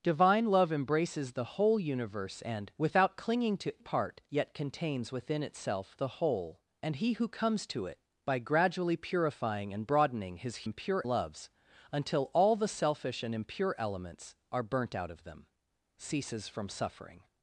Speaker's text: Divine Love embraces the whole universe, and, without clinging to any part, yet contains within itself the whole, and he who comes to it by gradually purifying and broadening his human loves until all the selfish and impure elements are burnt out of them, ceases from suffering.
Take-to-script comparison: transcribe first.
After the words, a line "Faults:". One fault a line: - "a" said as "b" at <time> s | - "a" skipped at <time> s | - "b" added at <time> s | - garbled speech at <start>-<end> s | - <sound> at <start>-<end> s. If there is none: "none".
Divine Love embraces the whole universe, and, without clinging to part, yet contains within itself the whole, and he who comes to it by gradually purifying and broadening his impure loves until all the selfish and impure elements are burnt out of them, ceases from suffering.
Faults:
- "any" skipped at 3.8 s
- "human" said as "impure" at 10.6 s